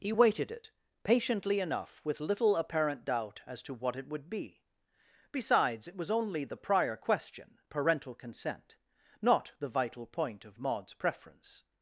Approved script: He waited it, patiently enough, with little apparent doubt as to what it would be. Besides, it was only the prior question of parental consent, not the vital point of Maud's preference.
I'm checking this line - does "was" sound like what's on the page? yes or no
yes